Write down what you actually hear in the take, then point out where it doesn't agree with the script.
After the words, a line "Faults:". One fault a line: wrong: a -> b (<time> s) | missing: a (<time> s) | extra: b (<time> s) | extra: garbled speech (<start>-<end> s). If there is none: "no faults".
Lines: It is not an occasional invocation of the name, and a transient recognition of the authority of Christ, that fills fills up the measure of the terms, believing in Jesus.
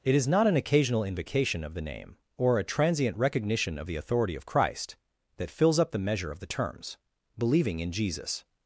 It is not an occasional invocation of the name, or a transient recognition of the authority of Christ, that fills up the measure of the terms, believing in Jesus.
Faults:
wrong: and -> or (2.4 s)
missing: fills (5.8 s)